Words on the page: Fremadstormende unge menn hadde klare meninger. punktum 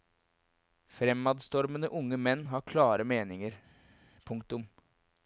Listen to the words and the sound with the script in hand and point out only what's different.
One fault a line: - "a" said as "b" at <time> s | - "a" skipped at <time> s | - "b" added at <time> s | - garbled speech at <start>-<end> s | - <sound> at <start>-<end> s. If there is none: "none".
- "hadde" said as "har" at 2.5 s